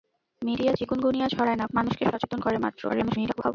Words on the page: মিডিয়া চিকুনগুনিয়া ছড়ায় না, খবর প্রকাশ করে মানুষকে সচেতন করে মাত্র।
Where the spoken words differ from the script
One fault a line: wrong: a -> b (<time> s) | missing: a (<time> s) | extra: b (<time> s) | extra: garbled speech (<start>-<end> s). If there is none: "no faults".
missing: খবর প্রকাশ করে (1.6 s)
extra: garbled speech (2.9-3.5 s)